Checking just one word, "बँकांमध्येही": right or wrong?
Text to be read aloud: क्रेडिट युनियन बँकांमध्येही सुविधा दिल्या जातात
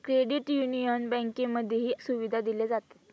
right